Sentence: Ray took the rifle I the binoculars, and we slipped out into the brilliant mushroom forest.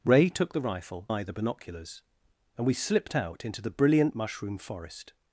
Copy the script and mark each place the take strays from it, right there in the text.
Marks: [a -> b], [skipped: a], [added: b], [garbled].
Ray took the rifle I the binoculars, and we slipped out into the brilliant mushroom forest.